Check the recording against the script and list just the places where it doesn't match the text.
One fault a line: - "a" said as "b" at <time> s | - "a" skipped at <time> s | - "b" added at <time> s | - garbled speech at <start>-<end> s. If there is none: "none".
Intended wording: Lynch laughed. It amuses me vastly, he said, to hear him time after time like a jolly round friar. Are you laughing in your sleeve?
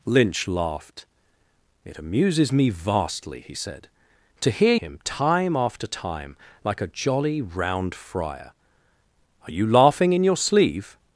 none